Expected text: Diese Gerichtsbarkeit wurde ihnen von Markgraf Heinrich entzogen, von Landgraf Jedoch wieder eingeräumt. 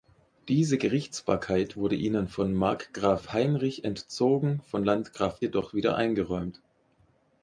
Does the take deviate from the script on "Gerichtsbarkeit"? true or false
false